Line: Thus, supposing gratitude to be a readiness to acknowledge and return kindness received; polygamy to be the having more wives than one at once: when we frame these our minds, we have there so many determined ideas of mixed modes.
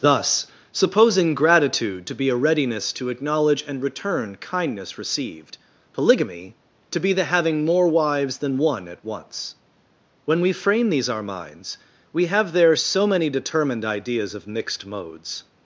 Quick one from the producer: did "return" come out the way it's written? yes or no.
yes